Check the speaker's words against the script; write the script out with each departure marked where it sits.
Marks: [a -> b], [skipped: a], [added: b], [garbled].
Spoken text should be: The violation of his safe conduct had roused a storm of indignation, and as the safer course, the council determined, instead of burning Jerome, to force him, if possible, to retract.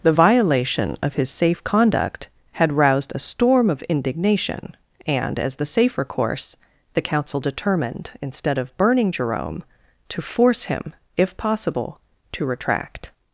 The violation of his safe conduct had roused a storm of indignation, and as the safer course, the council determined, instead of burning Jerome, to force him, if possible, to retract.